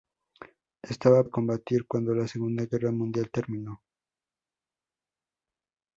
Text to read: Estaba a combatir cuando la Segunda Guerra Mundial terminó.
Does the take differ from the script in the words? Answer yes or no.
no